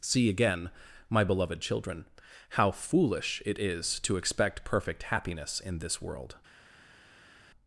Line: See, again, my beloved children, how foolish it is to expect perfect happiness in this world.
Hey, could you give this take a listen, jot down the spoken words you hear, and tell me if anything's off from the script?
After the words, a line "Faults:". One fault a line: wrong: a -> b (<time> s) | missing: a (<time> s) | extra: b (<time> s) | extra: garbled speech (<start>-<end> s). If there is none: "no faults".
See, again, my beloved children, how foolish it is to expect perfect happiness in this world.
Faults:
no faults